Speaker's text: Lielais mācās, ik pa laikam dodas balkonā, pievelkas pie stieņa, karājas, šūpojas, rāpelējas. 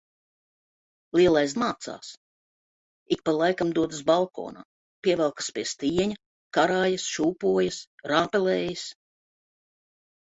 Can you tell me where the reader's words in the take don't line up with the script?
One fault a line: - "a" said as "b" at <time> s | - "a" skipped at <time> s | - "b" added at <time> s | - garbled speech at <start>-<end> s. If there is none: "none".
none